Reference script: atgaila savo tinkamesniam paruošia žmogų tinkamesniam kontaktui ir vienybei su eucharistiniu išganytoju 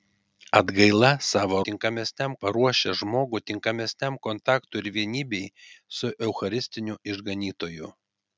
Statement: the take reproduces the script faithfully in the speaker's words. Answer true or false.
true